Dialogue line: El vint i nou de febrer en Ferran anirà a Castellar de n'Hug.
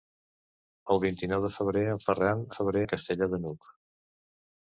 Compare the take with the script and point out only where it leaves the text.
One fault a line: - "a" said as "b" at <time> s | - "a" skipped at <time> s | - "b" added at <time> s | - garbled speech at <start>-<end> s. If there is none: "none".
- "anirà" said as "febrer" at 2.6 s